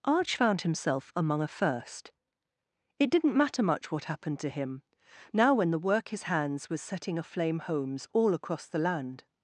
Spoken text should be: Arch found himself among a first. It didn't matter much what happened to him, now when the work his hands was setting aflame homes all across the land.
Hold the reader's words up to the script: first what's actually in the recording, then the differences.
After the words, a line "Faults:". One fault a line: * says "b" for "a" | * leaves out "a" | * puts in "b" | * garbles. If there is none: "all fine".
Arch found himself among a first. It didn't matter much what happened to him, now when the work his hands was setting aflame homes all across the land.
Faults:
all fine